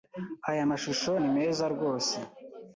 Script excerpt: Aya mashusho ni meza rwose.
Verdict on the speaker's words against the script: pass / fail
pass